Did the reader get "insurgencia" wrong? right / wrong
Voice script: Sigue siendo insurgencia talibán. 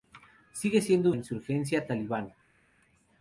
right